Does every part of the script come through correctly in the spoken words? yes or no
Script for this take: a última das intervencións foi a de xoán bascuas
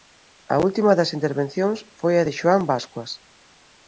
yes